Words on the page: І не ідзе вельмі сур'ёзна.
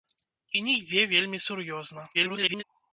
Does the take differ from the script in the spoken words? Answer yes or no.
yes